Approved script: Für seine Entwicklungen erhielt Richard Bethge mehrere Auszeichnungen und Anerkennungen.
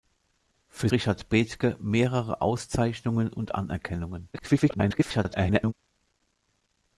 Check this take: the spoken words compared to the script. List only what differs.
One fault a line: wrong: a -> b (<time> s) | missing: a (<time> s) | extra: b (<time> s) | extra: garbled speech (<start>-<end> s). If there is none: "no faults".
missing: seine Entwicklungen erhielt (0.9 s)
extra: garbled speech (4.3-5.7 s)